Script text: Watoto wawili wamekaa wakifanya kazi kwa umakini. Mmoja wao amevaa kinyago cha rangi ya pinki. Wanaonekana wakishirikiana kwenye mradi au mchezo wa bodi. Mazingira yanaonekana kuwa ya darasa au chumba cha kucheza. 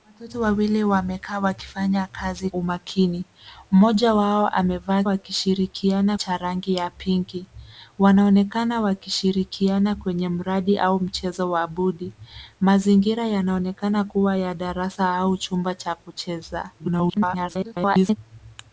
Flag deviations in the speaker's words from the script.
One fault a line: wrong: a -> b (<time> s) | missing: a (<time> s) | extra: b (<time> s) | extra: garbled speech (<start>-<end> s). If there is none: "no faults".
missing: kwa (2.5 s)
wrong: kinyago -> wakishirikiana (5.0 s)
extra: garbled speech (16.8-18.2 s)